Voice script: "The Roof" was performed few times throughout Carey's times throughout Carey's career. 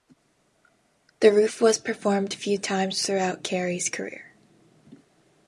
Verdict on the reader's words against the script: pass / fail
fail